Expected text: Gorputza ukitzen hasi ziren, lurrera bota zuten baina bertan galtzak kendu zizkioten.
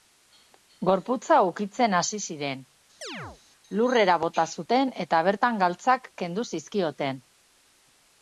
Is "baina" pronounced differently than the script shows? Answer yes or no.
yes